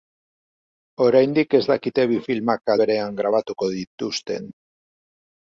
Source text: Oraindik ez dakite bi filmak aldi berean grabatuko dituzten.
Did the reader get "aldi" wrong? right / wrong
wrong